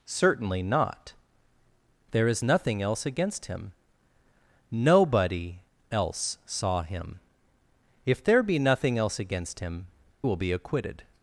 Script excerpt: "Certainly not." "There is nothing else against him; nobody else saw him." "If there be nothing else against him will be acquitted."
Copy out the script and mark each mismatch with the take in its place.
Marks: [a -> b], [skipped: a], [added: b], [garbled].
"Certainly not." "There is nothing else against him; nobody else saw him." "If there be nothing else against him will be acquitted."